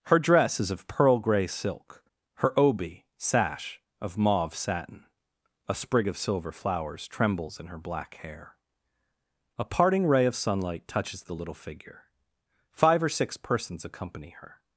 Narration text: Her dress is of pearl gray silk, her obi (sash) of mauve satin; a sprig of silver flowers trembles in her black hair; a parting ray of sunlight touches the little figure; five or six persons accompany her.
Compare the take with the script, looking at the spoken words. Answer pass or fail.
pass